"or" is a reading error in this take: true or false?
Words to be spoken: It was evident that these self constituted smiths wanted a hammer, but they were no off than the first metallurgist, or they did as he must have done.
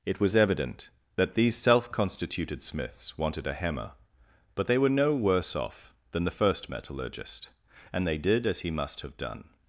true